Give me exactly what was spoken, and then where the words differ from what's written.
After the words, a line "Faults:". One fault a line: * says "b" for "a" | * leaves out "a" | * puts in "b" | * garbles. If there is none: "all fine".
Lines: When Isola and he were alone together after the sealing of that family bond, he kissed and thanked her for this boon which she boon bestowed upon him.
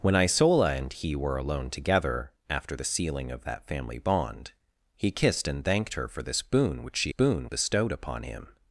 When Isola and he were alone together after the sealing of that family bond, he kissed and thanked her for this boon which she boon bestowed upon him.
Faults:
all fine